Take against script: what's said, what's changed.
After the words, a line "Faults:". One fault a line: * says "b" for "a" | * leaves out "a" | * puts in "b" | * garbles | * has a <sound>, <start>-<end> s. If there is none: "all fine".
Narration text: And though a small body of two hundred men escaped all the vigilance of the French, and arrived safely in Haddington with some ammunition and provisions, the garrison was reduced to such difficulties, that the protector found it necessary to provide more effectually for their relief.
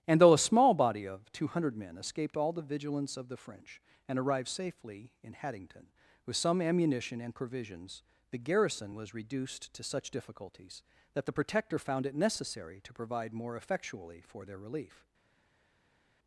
And though a small body of two hundred men escaped all the vigilance of the French, and arrived safely in Haddington with some ammunition and provisions, the garrison was reduced to such difficulties, that the protector found it necessary to provide more effectually for their relief.
Faults:
all fine